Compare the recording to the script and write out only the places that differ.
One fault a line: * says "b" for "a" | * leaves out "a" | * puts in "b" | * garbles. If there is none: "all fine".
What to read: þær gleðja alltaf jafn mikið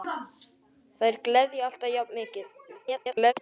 * garbles